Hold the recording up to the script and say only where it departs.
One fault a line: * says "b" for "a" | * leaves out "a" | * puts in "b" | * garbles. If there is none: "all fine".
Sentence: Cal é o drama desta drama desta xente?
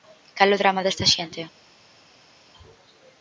* leaves out "drama desta"